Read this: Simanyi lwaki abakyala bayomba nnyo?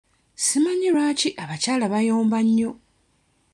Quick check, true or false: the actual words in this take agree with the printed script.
true